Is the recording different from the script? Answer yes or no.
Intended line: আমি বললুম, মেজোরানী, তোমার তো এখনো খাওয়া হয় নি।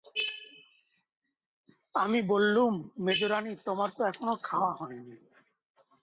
no